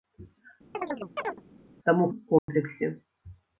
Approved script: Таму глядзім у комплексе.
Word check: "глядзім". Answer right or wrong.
wrong